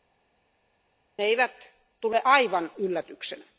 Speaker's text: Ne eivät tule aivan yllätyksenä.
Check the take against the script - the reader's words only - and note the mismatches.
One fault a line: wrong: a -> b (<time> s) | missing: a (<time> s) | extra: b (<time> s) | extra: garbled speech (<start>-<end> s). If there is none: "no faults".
no faults